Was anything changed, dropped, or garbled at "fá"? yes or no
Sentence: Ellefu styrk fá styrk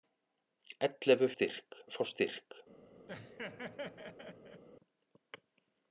no